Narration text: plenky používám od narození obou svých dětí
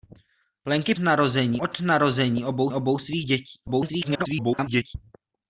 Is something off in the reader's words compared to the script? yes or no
yes